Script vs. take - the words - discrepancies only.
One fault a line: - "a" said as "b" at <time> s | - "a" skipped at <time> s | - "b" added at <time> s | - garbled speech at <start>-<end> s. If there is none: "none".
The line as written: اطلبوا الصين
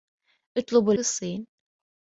none